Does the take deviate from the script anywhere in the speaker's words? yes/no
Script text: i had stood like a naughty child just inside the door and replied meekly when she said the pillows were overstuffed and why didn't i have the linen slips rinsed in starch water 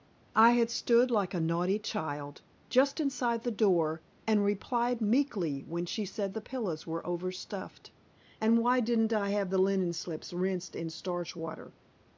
no